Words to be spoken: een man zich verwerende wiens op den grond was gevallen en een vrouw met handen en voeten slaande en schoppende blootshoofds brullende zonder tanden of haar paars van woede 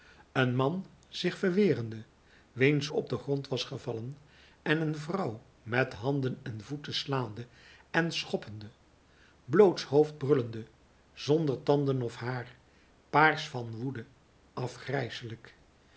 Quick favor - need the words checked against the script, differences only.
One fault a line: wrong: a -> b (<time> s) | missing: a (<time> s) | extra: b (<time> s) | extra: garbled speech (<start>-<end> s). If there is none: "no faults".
no faults